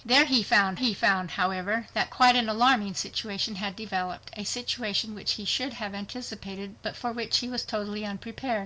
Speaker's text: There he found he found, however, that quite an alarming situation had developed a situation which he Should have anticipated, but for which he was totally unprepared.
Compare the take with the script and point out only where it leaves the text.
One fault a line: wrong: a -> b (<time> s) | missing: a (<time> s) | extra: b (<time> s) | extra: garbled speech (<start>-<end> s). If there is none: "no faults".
no faults